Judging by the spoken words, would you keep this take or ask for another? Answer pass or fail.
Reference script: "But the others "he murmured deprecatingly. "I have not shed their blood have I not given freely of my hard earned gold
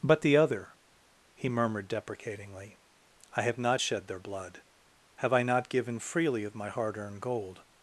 fail